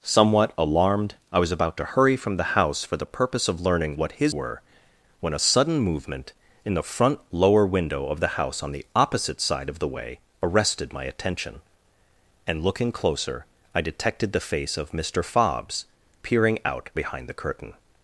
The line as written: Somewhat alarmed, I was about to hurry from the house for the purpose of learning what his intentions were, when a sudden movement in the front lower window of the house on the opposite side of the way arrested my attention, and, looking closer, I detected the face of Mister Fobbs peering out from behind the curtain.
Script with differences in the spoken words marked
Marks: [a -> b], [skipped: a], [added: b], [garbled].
Somewhat alarmed, I was about to hurry from the house for the purpose of learning what his [skipped: intentions] were, when a sudden movement in the front lower window of the house on the opposite side of the way arrested my attention, and, looking closer, I detected the face of Mister Fobbs peering out [skipped: from] behind the curtain.